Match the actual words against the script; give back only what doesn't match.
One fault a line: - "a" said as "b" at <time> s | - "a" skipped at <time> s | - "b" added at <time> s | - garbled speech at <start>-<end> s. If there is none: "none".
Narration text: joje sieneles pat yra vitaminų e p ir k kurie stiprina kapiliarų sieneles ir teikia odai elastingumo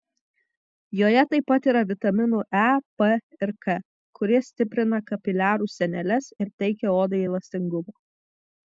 - "sieneles" said as "taip" at 1.3 s